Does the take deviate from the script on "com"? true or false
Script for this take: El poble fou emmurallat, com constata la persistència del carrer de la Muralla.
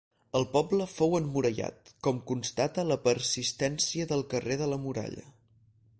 false